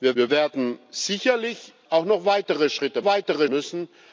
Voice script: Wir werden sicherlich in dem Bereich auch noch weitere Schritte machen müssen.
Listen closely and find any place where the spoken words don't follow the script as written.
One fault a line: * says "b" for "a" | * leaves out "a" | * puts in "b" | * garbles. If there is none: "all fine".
* puts in "wir"
* leaves out "in dem Bereich"
* says "weitere" for "machen"